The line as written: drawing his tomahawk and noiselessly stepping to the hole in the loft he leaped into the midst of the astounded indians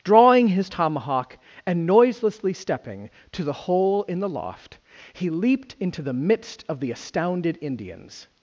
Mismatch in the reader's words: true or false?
false